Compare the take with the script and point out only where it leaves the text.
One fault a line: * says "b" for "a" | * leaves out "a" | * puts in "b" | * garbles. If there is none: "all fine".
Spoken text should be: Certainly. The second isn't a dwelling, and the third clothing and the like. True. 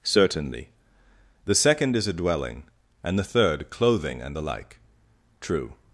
* says "is" for "isn't"